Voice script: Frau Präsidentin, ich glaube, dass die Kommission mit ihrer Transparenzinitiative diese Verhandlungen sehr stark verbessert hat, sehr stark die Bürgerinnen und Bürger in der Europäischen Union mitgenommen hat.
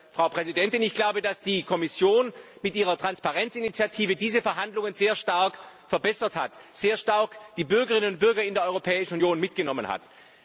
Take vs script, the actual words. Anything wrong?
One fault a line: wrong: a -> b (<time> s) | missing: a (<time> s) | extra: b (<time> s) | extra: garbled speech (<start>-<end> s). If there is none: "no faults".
no faults